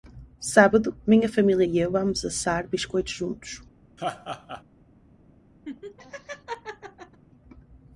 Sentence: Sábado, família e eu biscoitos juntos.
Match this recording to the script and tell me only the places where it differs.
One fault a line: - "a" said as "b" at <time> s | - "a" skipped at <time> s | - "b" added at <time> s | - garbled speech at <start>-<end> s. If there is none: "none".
- "minha" added at 1.1 s
- "vamos assar" added at 1.9 s